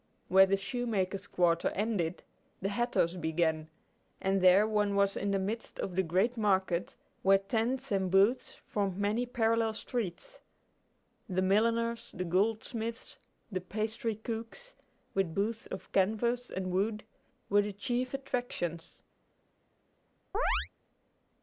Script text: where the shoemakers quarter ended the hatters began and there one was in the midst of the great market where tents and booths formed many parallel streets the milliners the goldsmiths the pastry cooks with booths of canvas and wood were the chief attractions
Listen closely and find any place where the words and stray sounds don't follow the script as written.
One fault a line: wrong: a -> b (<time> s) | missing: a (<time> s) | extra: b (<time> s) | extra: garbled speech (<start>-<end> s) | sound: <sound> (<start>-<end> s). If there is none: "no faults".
sound: chirp (20.3-20.7 s)